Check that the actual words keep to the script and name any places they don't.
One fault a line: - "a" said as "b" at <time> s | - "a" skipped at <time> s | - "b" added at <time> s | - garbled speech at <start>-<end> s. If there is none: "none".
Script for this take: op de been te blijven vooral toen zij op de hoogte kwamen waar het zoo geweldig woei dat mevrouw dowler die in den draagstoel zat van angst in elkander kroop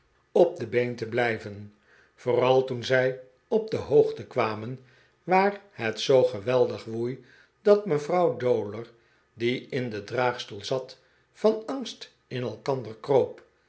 none